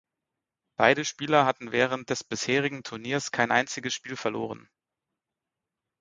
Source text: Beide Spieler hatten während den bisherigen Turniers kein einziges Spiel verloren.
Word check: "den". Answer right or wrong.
wrong